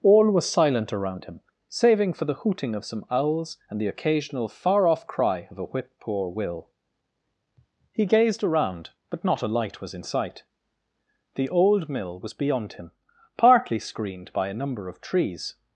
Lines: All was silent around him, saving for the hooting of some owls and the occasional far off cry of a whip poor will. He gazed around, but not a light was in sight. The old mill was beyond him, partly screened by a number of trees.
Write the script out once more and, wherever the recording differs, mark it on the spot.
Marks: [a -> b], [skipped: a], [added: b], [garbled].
All was silent around him, saving for the hooting of some owls and the occasional far off cry of a whip poor will. He gazed around, but not a light was in sight. The old mill was beyond him, partly screened by a number of trees.